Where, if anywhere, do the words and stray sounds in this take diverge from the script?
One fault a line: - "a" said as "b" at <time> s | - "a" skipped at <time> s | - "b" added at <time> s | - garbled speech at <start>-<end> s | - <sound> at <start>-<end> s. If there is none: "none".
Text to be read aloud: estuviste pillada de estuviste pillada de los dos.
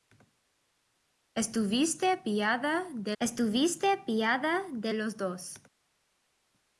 none